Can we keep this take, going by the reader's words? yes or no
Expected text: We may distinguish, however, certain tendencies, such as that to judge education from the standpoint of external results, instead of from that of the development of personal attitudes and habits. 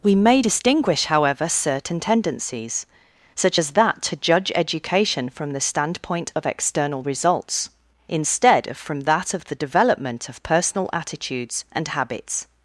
yes